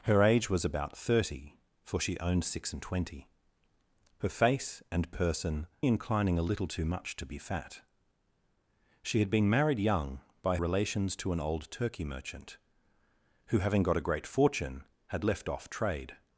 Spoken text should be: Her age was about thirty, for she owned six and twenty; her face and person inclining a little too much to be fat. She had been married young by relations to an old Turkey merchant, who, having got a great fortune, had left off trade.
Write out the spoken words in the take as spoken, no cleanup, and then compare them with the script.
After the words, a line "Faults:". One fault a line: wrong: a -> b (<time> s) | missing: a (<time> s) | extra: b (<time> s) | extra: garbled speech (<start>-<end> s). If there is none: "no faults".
Her age was about thirty, for she owned six and twenty; her face and person inclining a little too much to be fat. She had been married young by relations to an old Turkey merchant, who, having got a great fortune, had left off trade.
Faults:
no faults